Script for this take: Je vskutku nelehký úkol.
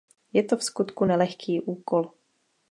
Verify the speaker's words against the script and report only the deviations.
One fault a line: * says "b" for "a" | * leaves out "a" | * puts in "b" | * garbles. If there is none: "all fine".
* puts in "to"